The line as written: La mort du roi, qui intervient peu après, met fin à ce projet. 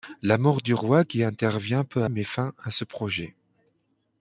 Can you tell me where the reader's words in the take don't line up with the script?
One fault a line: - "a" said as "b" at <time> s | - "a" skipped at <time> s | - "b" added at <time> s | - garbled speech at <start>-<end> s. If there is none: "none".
- "après" skipped at 2.0 s